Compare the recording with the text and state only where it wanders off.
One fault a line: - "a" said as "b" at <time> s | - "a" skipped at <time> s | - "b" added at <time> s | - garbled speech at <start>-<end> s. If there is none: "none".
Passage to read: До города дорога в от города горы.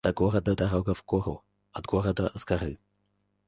- "гору" added at 1.0 s
- "с" added at 2.3 s